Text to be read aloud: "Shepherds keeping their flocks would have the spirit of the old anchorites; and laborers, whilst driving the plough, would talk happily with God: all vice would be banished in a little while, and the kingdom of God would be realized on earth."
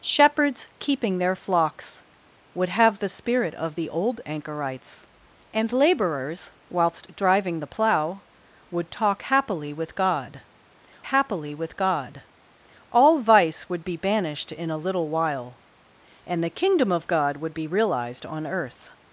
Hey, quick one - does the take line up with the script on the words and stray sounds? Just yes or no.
no